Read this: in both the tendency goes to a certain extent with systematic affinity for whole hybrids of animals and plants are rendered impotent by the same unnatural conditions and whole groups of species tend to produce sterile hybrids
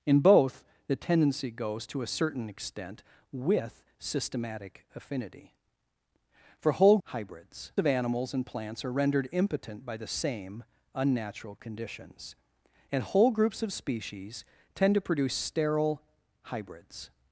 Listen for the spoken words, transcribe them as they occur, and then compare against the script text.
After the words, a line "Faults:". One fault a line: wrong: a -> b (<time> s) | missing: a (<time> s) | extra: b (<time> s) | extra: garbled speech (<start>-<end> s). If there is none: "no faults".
in both the tendency goes to a certain extent with systematic affinity for whole hybrids of animals and plants are rendered impotent by the same unnatural conditions and whole groups of species tend to produce sterile hybrids
Faults:
no faults